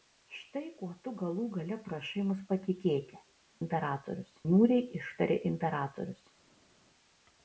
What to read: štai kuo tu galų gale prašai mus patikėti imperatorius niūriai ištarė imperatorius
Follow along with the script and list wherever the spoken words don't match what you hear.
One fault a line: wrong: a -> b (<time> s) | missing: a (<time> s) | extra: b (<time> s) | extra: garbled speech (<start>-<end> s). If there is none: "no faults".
no faults